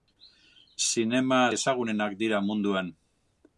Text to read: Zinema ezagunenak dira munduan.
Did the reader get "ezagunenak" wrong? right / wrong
right